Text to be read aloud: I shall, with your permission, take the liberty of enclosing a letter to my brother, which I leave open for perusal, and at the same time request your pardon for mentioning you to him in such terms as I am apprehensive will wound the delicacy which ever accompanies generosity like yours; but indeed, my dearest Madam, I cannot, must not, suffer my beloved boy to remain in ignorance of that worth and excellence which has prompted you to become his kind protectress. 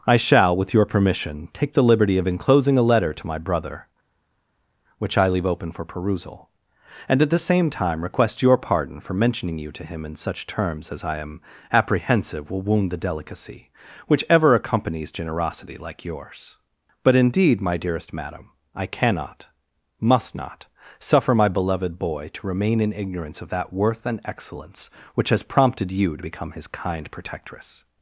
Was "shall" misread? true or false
false